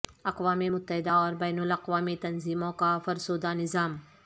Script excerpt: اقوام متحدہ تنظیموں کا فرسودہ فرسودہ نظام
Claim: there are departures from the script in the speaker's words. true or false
true